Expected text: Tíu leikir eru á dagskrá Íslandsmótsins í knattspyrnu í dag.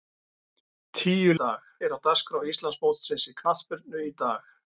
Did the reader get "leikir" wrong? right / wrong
wrong